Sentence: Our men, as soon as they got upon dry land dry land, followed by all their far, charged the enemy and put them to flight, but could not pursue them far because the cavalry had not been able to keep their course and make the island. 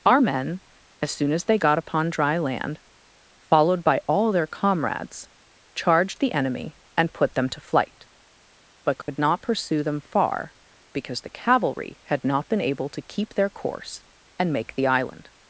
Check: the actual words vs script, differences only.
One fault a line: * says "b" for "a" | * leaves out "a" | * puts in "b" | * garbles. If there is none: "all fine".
* leaves out "dry land"
* says "comrades" for "far"